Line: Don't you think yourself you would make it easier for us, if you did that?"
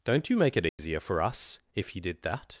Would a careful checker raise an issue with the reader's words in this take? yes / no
yes